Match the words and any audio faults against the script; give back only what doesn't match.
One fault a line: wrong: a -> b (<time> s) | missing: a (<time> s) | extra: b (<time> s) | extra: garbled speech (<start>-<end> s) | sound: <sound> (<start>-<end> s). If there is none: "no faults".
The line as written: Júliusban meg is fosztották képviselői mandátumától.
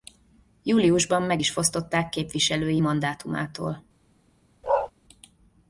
sound: bark (4.6-4.9 s)